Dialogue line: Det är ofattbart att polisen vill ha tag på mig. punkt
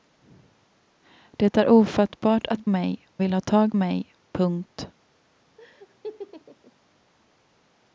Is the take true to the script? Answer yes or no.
no